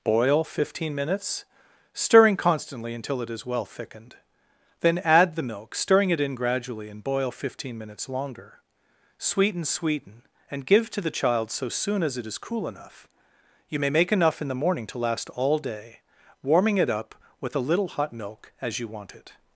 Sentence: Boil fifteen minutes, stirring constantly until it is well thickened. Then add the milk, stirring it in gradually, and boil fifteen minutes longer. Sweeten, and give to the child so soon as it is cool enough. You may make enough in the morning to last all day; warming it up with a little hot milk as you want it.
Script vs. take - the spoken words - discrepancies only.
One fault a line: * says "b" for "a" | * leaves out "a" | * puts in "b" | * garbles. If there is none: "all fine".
* puts in "Sweeten"